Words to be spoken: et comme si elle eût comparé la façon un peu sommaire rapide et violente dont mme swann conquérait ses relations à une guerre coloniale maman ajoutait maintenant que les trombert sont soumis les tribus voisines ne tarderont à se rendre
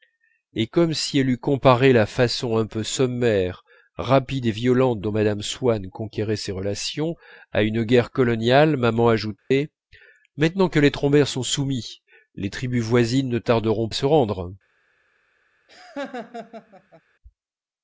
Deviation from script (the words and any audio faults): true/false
true